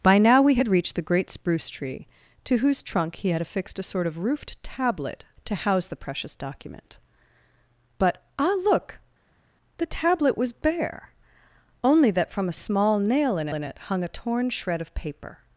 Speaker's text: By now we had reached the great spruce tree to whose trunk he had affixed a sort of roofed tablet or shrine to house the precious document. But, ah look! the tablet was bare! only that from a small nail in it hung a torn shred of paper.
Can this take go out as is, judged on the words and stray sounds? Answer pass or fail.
fail